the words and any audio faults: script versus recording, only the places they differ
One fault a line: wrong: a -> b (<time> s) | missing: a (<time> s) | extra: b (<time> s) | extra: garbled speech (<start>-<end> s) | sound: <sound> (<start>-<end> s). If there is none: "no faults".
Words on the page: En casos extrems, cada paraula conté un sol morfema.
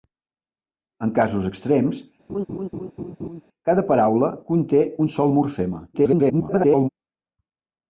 sound: laugh (2.3-3.4 s)
extra: garbled speech (5.9-6.9 s)